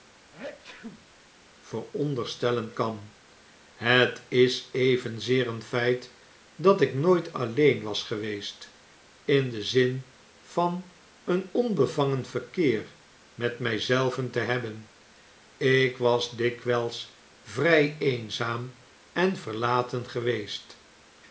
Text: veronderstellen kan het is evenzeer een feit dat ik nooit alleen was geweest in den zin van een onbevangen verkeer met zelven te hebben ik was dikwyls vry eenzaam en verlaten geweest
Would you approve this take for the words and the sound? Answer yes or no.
no